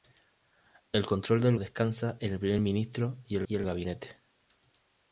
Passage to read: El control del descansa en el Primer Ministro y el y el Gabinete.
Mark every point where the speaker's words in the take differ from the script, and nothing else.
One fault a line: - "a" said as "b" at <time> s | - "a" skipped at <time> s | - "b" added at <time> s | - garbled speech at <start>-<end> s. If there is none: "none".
none